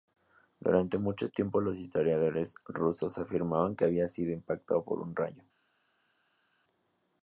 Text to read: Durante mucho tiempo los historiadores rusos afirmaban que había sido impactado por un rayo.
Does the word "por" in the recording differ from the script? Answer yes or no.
no